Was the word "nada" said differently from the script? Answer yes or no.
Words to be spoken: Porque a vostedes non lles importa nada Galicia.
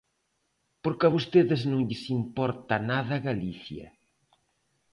no